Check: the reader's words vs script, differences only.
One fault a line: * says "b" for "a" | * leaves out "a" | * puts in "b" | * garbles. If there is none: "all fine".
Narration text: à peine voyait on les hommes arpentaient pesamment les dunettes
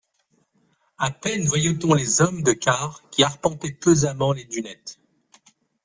* puts in "de quart qui"